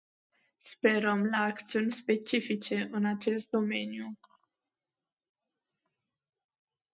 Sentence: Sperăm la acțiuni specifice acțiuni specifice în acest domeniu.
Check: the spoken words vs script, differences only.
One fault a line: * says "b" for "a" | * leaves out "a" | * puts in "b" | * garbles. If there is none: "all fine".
* leaves out "acțiuni specifice"